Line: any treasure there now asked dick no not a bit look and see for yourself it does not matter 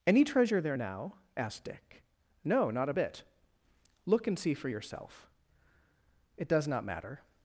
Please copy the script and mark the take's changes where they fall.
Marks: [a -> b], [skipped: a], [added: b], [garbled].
any treasure there now asked dick no not a bit look and see for yourself it does not matter